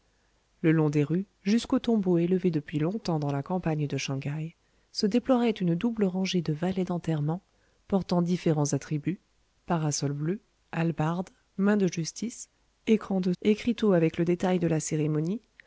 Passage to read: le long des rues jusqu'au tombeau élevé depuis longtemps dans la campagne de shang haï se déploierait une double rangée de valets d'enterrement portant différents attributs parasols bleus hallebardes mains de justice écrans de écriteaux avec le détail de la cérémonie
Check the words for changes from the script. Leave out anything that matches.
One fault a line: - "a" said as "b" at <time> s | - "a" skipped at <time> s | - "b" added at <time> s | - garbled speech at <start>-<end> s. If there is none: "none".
none